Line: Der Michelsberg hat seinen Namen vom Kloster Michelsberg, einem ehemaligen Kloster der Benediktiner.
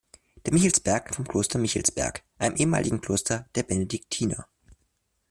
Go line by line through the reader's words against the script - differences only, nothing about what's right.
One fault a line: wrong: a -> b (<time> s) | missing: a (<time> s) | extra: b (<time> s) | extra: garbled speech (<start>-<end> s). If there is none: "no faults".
missing: hat seinen Namen (1.1 s)